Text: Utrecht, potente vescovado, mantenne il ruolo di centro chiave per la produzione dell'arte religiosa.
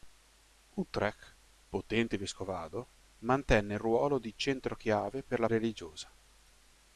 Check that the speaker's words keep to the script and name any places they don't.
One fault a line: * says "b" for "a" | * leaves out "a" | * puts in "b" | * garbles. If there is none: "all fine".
* leaves out "produzione dell'arte"